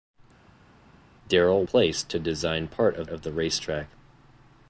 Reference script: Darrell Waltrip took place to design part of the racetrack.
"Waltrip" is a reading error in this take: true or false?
true